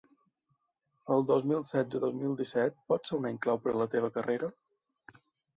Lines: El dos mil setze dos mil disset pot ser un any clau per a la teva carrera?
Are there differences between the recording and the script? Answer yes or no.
no